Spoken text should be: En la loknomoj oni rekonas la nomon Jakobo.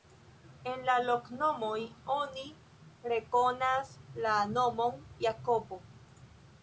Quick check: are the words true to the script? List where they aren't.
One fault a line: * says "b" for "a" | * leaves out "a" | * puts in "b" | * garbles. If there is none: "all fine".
all fine